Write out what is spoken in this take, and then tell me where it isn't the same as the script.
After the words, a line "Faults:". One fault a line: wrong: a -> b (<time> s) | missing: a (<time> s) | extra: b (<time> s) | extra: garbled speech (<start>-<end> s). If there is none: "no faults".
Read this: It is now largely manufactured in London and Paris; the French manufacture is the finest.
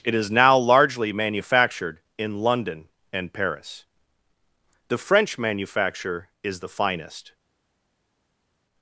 It is now largely manufactured in London and Paris; the French manufacture is the finest.
Faults:
no faults